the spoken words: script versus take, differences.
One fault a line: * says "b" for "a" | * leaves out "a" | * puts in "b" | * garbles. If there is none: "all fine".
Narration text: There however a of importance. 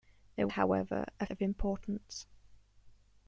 all fine